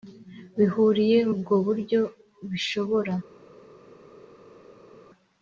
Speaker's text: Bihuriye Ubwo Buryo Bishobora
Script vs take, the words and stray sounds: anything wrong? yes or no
no